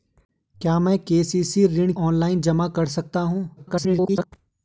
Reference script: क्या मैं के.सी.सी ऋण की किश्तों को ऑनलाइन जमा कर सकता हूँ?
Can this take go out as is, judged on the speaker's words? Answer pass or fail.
fail